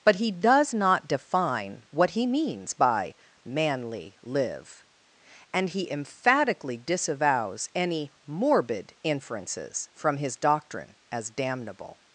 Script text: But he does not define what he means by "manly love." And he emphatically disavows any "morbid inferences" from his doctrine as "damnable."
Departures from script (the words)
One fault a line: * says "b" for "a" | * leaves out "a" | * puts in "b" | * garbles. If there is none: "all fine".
* says "live" for "love"